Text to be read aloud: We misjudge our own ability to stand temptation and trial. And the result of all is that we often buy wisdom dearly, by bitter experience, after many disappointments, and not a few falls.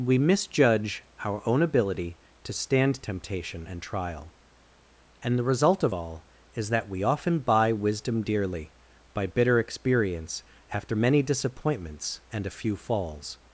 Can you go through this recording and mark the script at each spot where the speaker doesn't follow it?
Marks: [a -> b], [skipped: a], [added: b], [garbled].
We misjudge our own ability to stand temptation and trial. And the result of all is that we often buy wisdom dearly, by bitter experience, after many disappointments, and [skipped: not] a few falls.